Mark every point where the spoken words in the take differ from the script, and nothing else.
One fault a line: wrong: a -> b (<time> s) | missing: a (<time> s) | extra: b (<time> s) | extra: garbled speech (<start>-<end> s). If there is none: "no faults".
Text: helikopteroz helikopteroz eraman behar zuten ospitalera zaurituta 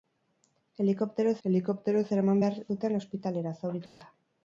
no faults